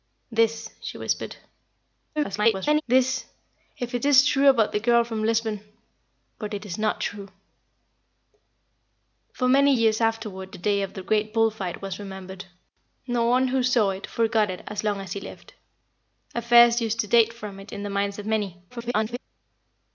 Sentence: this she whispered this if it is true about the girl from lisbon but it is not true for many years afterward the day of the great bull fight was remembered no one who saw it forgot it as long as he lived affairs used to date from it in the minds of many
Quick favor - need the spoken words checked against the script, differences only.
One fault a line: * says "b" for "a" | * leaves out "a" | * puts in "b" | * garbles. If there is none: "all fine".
* garbles
* garbles